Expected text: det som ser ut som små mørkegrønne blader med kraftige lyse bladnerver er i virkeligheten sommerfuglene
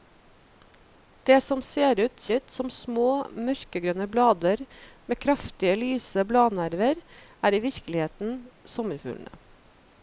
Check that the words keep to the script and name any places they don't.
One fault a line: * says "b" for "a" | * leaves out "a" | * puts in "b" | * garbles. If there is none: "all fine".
* puts in "ut"